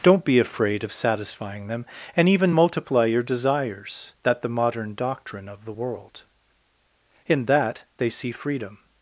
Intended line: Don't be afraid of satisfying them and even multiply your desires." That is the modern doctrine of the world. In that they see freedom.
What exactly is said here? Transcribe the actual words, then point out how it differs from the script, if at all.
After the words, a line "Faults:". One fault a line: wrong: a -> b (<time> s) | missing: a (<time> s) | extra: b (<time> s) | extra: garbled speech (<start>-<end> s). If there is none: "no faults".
Don't be afraid of satisfying them and even multiply your desires." That the modern doctrine of the world. In that they see freedom.
Faults:
missing: is (4.4 s)